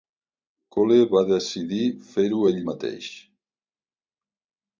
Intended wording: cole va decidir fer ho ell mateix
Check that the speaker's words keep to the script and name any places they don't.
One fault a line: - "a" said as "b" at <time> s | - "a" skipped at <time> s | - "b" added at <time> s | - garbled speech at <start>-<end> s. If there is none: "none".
none